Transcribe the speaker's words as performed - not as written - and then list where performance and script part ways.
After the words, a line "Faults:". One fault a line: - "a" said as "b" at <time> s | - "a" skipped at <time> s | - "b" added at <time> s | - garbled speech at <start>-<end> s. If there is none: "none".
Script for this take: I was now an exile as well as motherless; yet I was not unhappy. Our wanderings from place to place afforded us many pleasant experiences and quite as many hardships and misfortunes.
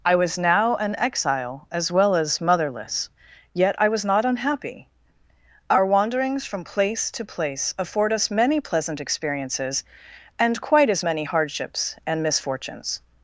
I was now an exile as well as motherless; yet I was not unhappy. Our wanderings from place to place afford us many pleasant experiences and quite as many hardships and misfortunes.
Faults:
- "afforded" said as "afford" at 7.8 s